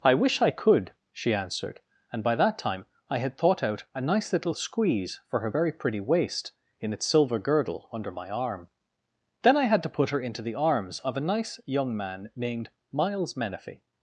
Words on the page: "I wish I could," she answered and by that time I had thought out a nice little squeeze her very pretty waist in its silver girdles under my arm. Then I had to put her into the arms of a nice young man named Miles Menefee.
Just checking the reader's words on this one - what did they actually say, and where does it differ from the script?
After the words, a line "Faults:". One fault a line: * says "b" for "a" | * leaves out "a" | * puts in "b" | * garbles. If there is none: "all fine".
"I wish I could," she answered and by that time I had thought out a nice little squeeze for her very pretty waist in its silver girdle under my arm. Then I had to put her into the arms of a nice young man named Miles Menefee.
Faults:
* puts in "for"
* says "girdle" for "girdles"